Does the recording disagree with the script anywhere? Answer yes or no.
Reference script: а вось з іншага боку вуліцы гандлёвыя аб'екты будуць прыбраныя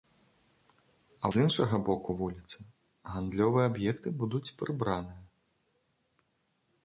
yes